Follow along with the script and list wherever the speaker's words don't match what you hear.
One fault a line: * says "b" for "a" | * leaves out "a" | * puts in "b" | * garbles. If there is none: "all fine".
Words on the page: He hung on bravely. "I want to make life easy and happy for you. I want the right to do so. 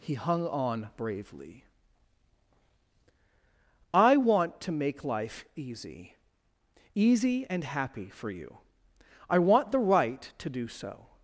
* puts in "easy"